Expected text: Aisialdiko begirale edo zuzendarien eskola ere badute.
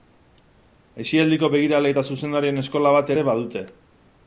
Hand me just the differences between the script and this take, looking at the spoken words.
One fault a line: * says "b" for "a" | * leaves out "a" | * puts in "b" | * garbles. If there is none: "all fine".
* says "eta" for "edo"
* puts in "bat"